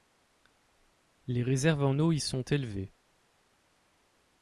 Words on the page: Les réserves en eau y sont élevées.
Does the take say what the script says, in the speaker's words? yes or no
yes